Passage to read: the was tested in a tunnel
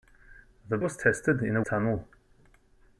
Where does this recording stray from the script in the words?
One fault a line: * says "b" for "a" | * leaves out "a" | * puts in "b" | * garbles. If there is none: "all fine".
all fine